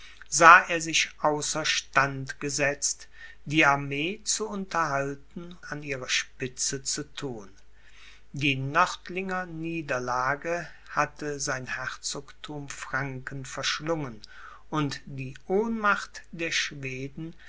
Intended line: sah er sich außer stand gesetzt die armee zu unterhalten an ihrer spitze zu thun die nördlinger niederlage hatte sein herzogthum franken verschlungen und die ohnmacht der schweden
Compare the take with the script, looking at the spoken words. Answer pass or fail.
pass